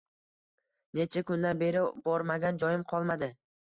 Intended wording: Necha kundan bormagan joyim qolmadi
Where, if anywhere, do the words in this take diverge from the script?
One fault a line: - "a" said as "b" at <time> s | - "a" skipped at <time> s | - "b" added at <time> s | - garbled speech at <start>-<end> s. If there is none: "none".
- "beri" added at 1.6 s